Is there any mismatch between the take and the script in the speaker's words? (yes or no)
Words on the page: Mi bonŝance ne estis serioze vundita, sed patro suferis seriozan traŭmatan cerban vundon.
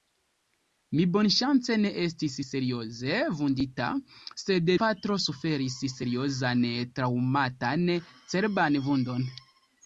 no